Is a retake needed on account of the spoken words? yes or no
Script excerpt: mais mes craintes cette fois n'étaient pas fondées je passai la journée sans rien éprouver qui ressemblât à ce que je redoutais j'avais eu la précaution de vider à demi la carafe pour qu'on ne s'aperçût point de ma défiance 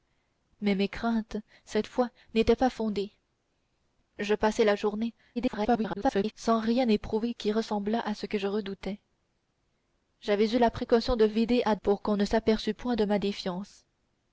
yes